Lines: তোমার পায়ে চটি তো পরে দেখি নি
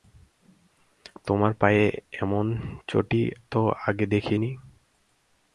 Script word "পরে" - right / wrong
wrong